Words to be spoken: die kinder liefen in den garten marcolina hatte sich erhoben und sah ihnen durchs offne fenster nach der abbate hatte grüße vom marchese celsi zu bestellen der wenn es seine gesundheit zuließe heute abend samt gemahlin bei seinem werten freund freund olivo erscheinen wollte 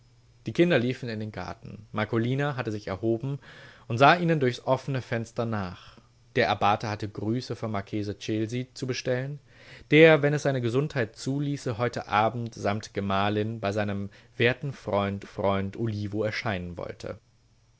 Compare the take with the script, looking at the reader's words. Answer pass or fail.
pass